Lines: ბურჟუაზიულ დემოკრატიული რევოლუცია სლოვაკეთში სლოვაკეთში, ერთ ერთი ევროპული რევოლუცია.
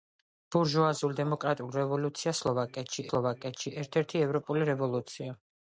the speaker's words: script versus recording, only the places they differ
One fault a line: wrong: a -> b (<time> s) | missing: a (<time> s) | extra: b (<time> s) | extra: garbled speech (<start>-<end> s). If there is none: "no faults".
no faults